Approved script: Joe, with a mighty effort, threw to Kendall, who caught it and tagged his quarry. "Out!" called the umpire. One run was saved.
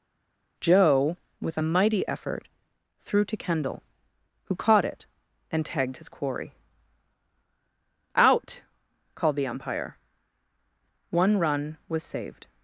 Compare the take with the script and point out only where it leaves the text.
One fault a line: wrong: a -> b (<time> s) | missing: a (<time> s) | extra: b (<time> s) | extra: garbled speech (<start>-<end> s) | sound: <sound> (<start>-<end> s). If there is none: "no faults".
no faults